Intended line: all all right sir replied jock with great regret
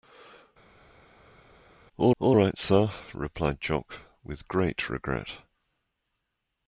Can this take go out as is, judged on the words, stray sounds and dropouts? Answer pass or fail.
pass